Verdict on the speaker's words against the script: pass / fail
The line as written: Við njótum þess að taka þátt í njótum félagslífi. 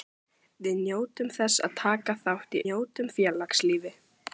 pass